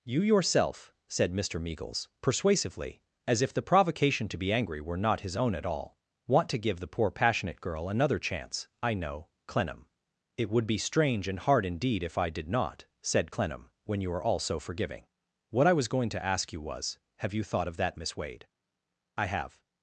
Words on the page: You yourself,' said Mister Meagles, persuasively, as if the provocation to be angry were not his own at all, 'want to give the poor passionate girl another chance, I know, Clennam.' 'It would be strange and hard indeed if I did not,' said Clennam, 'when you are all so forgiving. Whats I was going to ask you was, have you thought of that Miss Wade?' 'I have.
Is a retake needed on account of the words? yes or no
yes